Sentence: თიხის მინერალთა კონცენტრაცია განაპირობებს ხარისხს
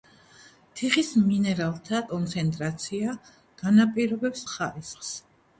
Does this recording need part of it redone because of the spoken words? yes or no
no